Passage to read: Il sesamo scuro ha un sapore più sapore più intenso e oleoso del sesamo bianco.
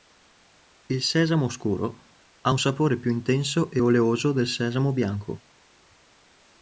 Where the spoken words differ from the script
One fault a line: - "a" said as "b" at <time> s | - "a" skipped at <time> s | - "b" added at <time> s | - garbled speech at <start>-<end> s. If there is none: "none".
- "sapore più" skipped at 3.1 s